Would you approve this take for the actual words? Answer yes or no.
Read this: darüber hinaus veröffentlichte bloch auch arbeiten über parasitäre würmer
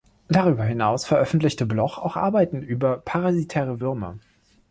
yes